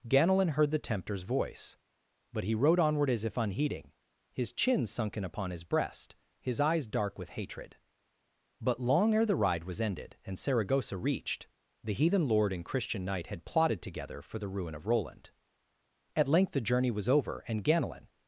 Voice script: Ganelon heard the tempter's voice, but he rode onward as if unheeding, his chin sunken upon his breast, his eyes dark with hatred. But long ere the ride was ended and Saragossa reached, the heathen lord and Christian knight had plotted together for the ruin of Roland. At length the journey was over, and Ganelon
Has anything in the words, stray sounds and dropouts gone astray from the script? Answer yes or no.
no